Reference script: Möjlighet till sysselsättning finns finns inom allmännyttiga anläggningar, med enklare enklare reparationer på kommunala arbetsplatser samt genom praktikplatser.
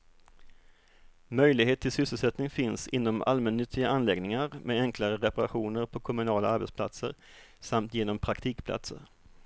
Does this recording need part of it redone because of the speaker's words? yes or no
yes